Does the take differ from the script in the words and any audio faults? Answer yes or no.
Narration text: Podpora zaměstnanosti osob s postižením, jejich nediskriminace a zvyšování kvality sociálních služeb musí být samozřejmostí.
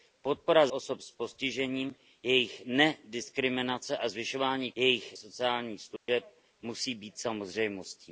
yes